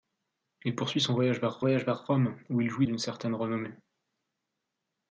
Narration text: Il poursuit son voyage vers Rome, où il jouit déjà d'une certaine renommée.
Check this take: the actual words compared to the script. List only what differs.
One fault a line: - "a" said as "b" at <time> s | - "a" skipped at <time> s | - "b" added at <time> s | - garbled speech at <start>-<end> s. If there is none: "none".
- "voyage vers" added at 1.6 s
- "déjà" skipped at 2.9 s